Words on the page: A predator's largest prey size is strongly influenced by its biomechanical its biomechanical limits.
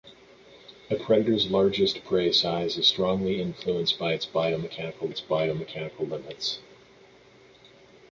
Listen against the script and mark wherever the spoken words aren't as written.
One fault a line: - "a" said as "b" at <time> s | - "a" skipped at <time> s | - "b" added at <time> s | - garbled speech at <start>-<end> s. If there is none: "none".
none